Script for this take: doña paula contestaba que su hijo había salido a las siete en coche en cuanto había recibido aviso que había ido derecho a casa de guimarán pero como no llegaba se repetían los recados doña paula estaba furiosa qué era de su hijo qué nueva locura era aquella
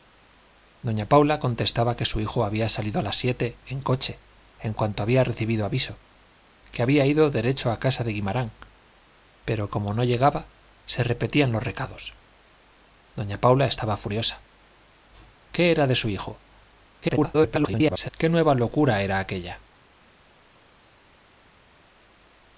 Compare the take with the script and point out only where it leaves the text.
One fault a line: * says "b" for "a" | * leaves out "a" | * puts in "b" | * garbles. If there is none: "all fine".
* garbles